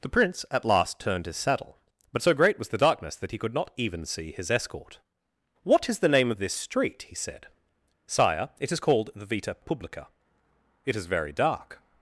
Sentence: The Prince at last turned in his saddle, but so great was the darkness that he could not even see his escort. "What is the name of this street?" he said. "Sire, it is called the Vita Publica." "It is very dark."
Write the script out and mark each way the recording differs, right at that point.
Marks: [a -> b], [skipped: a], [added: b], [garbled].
The Prince at last turned [skipped: in] his saddle, but so great was the darkness that he could not even see his escort. "What is the name of this street?" he said. "Sire, it is called the Vita Publica." "It is very dark."